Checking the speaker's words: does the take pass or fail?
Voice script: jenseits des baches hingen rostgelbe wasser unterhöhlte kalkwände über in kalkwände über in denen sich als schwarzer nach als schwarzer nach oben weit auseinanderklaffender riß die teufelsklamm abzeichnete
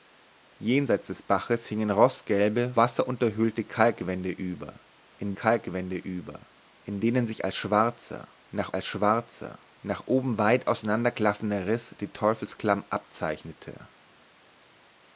pass